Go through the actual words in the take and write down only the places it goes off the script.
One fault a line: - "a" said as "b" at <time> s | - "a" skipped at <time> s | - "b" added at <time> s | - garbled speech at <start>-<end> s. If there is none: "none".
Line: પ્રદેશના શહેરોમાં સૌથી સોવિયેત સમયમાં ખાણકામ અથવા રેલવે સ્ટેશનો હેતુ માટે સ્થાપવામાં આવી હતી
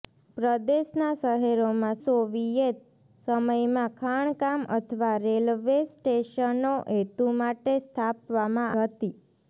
- "સૌથી" skipped at 2.0 s
- "આવી" skipped at 8.8 s